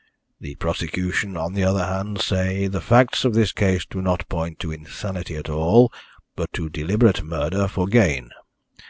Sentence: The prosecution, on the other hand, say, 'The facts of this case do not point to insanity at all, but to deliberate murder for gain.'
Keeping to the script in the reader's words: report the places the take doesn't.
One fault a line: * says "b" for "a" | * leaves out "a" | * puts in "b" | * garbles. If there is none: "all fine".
all fine